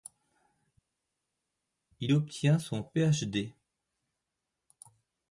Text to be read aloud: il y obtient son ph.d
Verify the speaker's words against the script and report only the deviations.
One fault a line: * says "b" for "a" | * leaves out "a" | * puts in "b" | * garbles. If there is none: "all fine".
* leaves out "y"